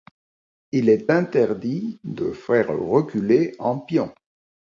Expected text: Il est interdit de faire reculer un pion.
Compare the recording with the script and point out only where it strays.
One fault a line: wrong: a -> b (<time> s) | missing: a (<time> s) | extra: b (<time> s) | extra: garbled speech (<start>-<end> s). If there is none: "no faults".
no faults